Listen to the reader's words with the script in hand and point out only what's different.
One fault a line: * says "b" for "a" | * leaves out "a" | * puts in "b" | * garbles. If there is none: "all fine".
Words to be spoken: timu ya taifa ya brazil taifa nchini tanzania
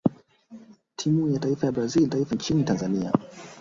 all fine